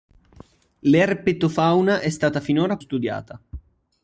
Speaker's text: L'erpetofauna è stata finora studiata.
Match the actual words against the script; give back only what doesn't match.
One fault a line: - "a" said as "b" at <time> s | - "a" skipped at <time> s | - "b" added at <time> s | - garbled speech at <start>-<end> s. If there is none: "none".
none